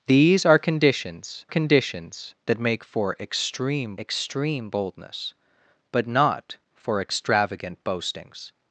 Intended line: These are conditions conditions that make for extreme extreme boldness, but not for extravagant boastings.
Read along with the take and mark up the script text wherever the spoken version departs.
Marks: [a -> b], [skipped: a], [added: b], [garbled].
These are conditions conditions that make for extreme extreme boldness, but not for extravagant boastings.